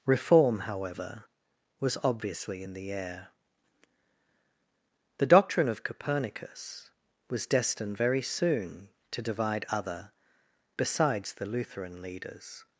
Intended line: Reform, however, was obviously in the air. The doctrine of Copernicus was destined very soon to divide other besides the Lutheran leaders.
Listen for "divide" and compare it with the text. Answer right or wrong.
right